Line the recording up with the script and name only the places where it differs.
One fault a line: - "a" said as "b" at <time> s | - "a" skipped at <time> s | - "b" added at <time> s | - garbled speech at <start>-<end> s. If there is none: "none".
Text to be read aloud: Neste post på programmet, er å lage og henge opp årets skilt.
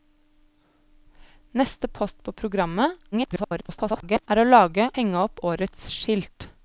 - garbled speech at 3.1-4.3 s
- "og" skipped at 4.9 s